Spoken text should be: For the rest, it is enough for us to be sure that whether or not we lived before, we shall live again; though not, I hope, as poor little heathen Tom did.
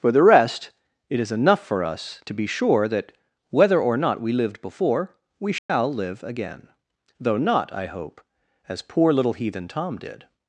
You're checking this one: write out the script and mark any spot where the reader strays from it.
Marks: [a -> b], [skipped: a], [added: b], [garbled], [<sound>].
For the rest, it is enough for us to be sure that whether or not we lived before, we shall [dropout] live again; though not, I hope, as poor little heathen Tom did.